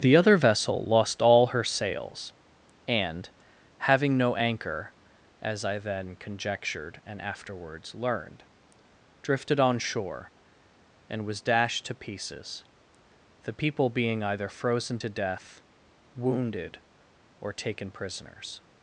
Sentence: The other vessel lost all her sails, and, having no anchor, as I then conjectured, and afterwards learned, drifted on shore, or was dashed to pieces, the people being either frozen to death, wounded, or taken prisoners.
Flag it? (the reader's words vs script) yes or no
yes